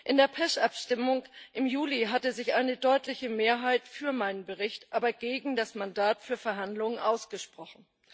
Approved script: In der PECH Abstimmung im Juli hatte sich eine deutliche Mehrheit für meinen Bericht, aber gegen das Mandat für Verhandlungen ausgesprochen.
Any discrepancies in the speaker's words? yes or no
no